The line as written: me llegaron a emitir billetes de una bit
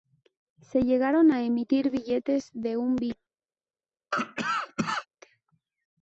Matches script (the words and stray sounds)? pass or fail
fail